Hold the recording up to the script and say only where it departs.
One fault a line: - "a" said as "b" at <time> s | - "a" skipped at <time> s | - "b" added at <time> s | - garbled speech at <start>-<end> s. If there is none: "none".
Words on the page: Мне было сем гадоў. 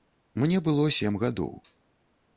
none